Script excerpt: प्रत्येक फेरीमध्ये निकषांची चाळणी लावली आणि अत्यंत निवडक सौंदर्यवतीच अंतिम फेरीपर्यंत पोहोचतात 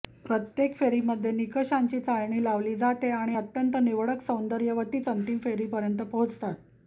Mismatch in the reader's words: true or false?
true